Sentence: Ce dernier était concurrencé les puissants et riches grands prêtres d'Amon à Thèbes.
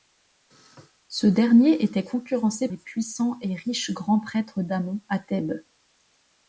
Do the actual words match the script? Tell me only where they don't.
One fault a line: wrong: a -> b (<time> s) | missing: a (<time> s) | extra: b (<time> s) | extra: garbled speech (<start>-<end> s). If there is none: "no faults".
no faults